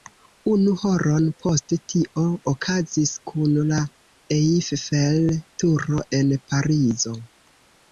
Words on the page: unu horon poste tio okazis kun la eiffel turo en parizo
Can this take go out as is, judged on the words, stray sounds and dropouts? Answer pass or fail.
pass